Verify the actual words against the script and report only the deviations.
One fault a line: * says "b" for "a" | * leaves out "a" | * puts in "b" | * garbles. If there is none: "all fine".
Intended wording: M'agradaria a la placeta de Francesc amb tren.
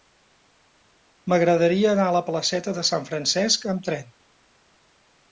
* puts in "anar"
* puts in "Sant"